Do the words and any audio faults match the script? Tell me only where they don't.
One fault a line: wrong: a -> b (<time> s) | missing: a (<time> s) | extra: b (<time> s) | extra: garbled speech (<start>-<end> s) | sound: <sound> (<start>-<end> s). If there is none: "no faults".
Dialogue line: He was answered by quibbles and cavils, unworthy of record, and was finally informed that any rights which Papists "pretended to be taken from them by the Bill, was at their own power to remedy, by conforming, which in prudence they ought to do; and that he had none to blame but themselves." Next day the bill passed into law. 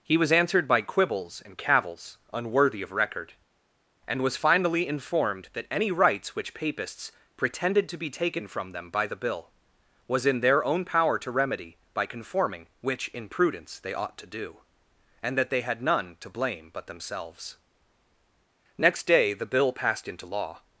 wrong: at -> in (10.2 s)
wrong: he -> they (15.5 s)